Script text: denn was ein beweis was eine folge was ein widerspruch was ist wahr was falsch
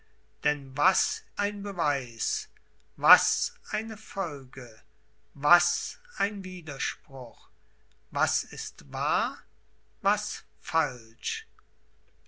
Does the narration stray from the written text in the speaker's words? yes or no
no